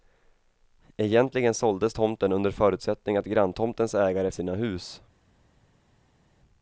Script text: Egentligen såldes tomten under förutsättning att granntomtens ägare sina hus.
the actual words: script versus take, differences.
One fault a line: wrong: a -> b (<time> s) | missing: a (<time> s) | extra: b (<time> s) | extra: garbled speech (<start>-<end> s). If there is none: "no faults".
no faults